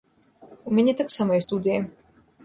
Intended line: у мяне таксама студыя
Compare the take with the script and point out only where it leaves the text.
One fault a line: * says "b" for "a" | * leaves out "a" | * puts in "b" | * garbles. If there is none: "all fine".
all fine